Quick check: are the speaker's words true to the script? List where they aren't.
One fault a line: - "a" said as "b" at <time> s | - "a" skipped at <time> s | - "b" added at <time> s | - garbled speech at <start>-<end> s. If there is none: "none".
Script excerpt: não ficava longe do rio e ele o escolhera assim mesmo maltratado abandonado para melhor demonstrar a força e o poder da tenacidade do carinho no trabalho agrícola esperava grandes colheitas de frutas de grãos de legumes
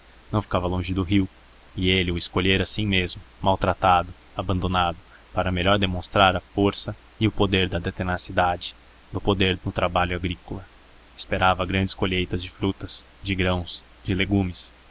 - "carinho" said as "poder" at 9.2 s